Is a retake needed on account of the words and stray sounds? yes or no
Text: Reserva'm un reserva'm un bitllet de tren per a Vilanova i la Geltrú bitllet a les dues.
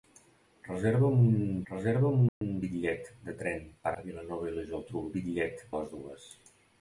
yes